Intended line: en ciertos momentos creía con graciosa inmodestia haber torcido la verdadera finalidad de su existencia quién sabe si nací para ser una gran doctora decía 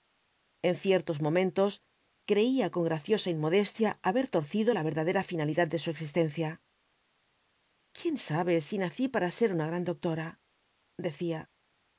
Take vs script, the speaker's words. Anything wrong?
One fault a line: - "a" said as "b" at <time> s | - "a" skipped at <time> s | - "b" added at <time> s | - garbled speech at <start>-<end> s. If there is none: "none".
none